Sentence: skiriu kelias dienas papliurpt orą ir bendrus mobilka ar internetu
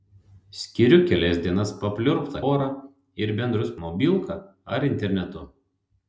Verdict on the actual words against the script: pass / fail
pass